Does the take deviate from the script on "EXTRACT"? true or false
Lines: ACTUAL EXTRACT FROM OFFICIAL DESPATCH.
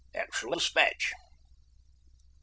true